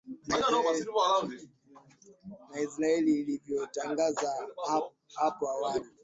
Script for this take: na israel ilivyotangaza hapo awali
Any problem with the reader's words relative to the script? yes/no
no